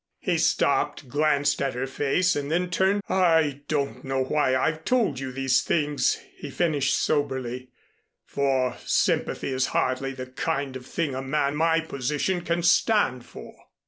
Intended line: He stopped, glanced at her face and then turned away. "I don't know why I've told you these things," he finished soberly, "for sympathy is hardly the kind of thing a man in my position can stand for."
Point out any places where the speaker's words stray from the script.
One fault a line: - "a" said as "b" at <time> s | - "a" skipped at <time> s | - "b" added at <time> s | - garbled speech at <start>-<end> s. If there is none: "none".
- "away" skipped at 3.0 s
- "in" skipped at 11.6 s